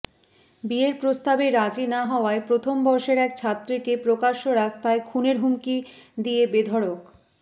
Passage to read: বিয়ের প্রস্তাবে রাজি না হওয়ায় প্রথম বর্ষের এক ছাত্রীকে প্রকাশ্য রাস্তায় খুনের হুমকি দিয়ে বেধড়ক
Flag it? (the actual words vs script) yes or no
no